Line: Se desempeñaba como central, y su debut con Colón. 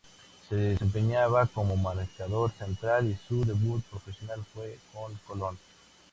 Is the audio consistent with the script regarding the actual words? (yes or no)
no